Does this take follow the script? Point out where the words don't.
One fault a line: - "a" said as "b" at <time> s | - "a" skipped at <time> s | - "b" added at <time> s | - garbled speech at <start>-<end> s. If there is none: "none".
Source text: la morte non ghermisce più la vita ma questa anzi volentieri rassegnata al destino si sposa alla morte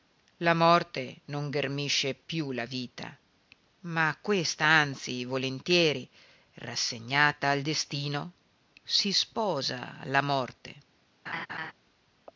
none